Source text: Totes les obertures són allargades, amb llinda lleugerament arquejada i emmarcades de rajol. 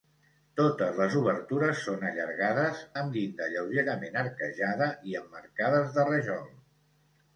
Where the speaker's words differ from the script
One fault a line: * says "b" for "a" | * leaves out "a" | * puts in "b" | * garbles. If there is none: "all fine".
all fine